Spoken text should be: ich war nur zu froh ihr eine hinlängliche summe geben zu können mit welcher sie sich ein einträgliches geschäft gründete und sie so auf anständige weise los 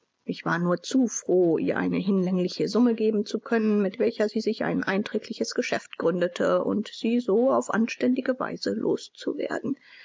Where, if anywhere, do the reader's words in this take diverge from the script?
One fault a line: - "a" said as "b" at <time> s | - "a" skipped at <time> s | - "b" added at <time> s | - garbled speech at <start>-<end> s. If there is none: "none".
none